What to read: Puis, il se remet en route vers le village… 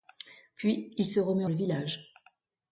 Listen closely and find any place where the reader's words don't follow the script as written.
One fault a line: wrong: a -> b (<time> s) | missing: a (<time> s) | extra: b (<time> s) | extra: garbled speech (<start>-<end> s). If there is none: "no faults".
missing: en route vers (1.4 s)